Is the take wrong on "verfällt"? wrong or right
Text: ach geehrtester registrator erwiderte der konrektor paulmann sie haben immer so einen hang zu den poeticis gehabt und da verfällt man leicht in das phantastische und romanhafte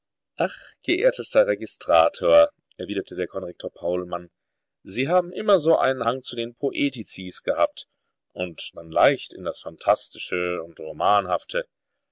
wrong